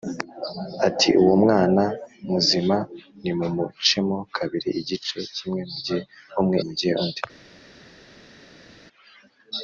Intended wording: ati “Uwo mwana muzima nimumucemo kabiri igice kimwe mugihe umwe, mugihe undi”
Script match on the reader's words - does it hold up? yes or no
yes